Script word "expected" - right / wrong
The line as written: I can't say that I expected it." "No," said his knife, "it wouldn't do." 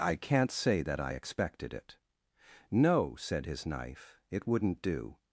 right